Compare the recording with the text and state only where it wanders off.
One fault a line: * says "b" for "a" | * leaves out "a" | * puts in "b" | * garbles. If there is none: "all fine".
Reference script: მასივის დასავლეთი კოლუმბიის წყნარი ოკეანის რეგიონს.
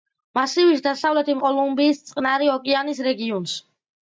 all fine